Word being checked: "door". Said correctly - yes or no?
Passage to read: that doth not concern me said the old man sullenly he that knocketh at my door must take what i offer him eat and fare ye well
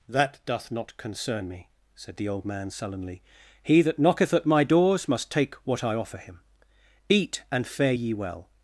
no